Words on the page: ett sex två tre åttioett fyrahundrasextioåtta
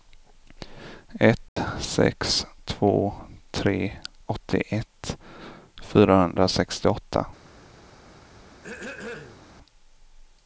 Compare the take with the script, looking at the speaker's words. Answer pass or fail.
pass